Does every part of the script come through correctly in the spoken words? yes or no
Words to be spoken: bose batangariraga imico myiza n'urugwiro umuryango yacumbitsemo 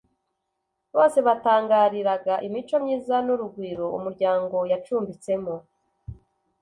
yes